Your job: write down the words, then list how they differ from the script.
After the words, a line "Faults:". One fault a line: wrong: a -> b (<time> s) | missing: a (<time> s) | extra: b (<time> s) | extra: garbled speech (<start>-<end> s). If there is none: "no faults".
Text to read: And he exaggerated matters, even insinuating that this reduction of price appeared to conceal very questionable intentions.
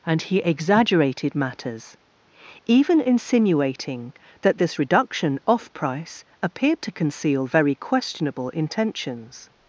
And he exaggerated matters, even insinuating that this reduction off price appeared to conceal very questionable intentions.
Faults:
wrong: of -> off (5.5 s)